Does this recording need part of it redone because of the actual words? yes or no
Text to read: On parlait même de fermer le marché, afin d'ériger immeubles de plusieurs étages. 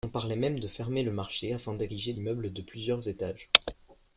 no